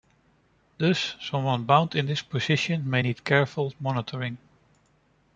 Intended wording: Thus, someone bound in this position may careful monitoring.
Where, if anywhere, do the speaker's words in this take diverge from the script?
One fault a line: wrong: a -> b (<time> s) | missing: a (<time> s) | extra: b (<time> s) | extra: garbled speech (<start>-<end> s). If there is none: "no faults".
extra: need (3.0 s)